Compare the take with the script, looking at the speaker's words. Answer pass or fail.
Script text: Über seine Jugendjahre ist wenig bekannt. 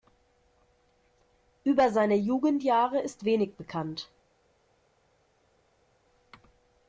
pass